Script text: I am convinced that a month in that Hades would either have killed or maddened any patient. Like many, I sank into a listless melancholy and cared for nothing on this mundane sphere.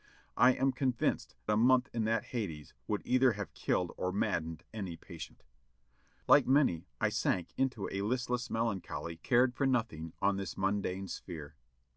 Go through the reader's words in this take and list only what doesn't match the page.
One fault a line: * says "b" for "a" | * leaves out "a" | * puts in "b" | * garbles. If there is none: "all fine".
* leaves out "that"
* leaves out "and"